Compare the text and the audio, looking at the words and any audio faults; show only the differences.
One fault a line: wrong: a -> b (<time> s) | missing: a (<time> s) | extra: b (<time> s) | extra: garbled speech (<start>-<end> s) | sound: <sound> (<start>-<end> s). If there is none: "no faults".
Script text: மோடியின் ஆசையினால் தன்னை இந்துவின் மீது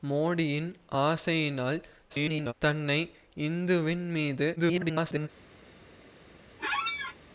extra: garbled speech (2.1-2.5 s)
extra: garbled speech (4.6-5.3 s)
sound: squeak (6.6-7.2 s)